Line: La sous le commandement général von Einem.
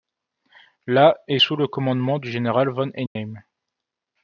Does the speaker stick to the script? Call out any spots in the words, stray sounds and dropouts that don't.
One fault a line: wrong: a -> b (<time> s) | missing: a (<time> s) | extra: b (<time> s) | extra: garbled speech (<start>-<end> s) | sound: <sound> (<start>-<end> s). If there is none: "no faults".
extra: est (1.3 s)
extra: du (2.2 s)
sound: dropout (3.1-3.2 s)